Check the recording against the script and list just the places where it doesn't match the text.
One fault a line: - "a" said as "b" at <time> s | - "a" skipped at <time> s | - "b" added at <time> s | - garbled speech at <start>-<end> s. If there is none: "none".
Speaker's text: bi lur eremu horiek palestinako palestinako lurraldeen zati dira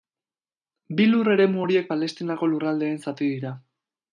- "palestinako" skipped at 2.5 s